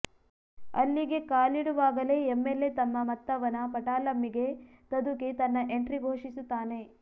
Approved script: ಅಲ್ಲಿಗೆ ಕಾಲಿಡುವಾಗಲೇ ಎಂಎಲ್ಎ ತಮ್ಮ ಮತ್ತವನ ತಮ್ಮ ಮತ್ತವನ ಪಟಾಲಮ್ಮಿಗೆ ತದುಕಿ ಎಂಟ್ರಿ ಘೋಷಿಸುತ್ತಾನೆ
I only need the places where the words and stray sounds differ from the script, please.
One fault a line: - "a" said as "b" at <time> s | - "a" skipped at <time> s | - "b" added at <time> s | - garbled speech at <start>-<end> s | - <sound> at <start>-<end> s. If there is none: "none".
- "ತಮ್ಮ ಮತ್ತವನ" skipped at 3.6 s
- "ತನ್ನ" added at 5.4 s